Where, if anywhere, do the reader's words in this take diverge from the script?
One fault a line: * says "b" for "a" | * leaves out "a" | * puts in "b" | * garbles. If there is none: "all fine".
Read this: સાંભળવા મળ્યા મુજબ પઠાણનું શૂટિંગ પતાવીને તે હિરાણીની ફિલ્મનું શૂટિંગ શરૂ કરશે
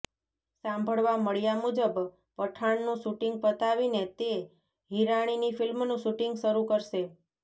all fine